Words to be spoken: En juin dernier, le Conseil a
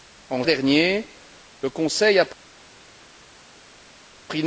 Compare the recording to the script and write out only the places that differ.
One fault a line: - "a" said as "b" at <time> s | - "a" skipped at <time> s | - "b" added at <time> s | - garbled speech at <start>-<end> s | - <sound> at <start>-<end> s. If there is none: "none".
- "juin" skipped at 0.4 s